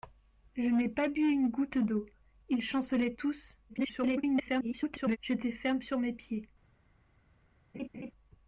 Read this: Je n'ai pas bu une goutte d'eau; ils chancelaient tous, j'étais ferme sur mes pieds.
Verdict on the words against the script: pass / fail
fail